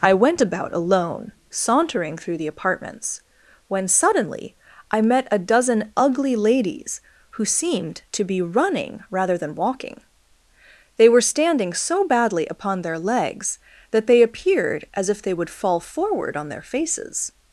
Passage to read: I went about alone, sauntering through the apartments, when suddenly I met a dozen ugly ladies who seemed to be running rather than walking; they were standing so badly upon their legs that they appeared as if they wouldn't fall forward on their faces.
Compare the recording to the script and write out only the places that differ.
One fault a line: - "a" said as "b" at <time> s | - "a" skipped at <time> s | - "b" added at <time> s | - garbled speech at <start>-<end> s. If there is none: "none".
- "wouldn't" said as "would" at 15.3 s